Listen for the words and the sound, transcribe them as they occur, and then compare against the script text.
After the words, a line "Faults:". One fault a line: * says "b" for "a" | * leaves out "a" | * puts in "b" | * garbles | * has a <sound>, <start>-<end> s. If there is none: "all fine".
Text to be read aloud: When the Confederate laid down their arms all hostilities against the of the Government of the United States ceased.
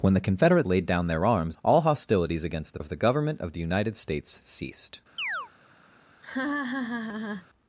When the Confederate laid down their arms all hostilities against the of the Government of the United States ceased.
Faults:
* has a chirp, 5.2-5.5 s
* has a laugh, 6.2-7.5 s